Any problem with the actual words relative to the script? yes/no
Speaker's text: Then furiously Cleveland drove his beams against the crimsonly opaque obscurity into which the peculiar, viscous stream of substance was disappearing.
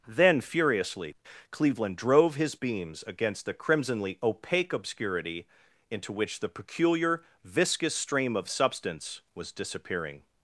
no